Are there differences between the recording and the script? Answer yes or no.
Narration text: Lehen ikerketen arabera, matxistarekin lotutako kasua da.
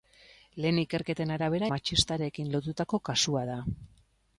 no